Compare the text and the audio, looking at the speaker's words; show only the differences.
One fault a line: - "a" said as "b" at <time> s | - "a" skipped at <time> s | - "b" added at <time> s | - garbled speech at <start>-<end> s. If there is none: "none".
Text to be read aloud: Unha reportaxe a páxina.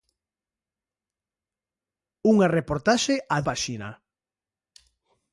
none